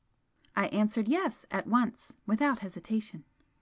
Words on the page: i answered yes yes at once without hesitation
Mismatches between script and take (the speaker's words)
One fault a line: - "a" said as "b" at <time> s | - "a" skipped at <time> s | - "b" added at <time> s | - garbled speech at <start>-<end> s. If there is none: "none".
- "yes" skipped at 1.4 s